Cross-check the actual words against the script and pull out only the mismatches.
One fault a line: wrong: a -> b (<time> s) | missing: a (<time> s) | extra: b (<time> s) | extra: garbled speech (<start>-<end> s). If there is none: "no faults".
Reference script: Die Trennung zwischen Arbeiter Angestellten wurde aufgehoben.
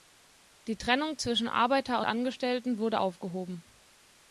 no faults